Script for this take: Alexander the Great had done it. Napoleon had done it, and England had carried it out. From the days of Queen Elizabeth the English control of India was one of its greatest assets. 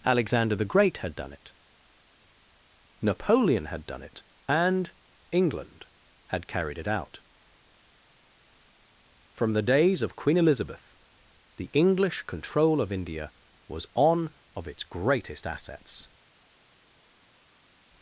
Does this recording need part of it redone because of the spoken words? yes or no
yes